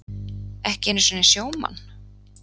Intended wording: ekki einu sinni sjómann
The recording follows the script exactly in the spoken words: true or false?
true